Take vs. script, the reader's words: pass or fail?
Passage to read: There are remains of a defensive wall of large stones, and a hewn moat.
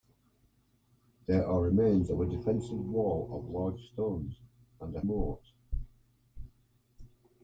fail